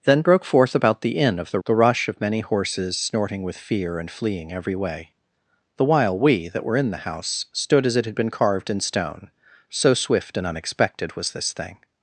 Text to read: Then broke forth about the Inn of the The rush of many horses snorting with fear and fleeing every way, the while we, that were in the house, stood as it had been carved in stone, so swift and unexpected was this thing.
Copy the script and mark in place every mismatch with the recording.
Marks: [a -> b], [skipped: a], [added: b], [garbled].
Then broke forth about the Inn of the The rush of many horses snorting with fear and fleeing every way, the while we, that were in the house, stood as it had been carved in stone, so swift and unexpected was this thing.